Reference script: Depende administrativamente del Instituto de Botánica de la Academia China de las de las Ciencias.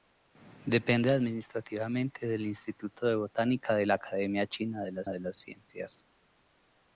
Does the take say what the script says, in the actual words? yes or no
yes